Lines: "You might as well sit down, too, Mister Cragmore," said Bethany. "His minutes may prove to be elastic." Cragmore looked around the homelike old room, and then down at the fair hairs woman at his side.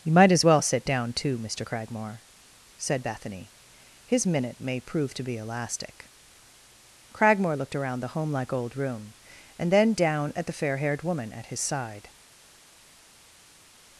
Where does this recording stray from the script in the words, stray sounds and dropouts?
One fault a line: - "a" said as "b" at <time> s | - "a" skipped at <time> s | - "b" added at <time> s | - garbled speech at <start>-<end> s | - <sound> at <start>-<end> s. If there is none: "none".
- "minutes" said as "minute" at 4.3 s
- "hairs" said as "haired" at 10.8 s